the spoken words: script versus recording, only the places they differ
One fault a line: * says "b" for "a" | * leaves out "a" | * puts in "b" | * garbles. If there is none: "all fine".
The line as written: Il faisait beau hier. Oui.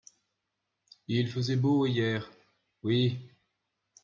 all fine